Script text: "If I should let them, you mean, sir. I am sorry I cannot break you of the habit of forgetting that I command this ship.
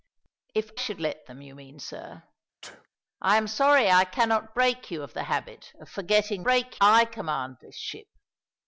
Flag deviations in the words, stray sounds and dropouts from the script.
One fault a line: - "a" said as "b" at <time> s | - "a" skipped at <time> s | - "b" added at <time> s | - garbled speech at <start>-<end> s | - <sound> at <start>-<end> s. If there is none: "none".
- "I" skipped at 0.7 s
- sneeze at 2.6-2.9 s
- "that" said as "break" at 6.4 s